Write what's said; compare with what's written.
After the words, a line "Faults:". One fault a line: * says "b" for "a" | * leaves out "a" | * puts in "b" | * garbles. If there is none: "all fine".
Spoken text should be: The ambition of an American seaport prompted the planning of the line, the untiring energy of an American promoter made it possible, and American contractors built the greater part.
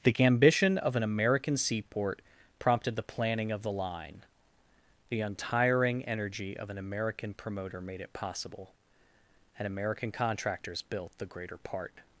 The ambition of an American seaport prompted the planning of the line, the untiring energy of an American promoter made it possible, and American contractors built the greater part.
Faults:
all fine